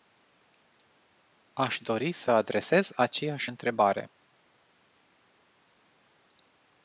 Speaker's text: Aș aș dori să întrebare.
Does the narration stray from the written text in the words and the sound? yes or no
yes